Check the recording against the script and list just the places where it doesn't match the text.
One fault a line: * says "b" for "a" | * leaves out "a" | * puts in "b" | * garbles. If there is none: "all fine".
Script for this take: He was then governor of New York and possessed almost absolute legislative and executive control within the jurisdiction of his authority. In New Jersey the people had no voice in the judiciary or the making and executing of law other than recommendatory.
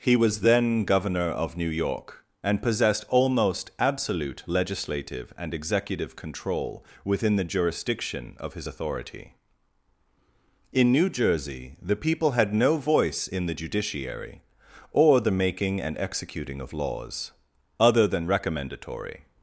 * says "laws" for "law"